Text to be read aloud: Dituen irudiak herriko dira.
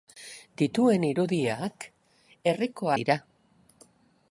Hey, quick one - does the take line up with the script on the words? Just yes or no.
yes